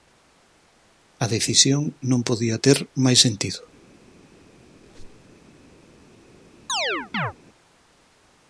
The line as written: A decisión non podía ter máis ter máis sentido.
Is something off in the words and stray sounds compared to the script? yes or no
yes